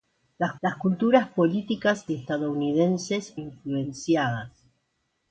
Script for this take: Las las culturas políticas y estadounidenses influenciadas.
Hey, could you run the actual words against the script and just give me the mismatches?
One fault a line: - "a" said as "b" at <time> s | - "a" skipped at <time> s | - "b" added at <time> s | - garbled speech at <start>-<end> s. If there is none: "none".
none